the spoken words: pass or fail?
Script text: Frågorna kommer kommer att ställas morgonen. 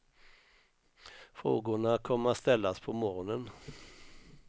fail